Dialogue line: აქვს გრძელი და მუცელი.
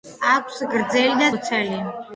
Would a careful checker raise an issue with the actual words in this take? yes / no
no